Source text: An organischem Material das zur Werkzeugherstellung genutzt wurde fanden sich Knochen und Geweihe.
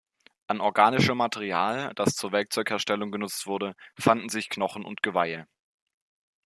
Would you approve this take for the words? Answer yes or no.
yes